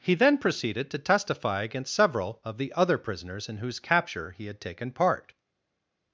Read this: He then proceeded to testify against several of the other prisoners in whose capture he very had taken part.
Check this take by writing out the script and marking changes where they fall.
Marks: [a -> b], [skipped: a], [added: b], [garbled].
He then proceeded to testify against several of the other prisoners in whose capture he [skipped: very] had taken part.